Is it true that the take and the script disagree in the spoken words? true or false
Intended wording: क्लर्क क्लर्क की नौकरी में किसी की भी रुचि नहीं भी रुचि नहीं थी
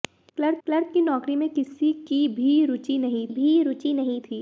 false